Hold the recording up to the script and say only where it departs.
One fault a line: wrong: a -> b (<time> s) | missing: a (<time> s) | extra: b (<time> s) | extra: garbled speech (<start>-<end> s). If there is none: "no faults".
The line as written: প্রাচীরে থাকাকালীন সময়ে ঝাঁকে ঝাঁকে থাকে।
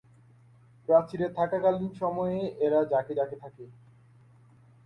extra: এরা (2.6 s)